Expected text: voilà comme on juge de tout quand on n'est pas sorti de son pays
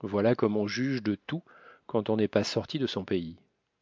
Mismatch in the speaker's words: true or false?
false